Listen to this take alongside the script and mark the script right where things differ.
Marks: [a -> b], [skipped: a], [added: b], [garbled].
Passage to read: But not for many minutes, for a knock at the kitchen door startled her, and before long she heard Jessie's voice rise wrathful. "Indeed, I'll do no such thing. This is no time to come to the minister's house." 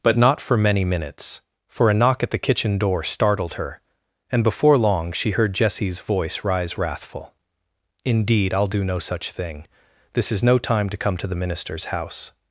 But not for many minutes, for a knock at the kitchen door startled her, and before long she heard Jessie's voice rise wrathful. "Indeed, I'll do no such thing. This is no time to come to the minister's house."